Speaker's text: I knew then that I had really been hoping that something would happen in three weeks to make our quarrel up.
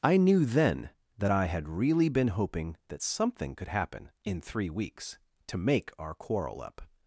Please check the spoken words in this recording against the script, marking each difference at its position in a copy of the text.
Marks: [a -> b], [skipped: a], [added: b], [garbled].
I knew then that I had really been hoping that something [would -> could] happen in three weeks to make our quarrel up.